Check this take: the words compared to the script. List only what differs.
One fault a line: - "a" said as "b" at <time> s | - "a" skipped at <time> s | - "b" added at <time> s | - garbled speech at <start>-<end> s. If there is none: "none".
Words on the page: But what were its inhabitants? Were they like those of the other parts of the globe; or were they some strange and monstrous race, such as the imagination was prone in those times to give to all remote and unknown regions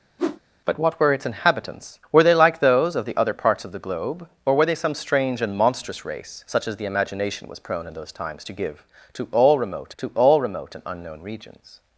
- "to all remote" added at 10.0 s